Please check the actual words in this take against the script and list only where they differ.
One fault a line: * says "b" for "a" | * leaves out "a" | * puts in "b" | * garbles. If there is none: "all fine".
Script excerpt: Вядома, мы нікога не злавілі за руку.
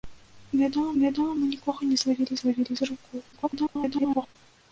* puts in "вядома"
* puts in "злавілі"
* garbles